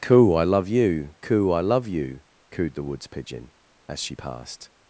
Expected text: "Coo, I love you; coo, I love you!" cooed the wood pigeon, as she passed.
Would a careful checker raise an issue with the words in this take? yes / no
yes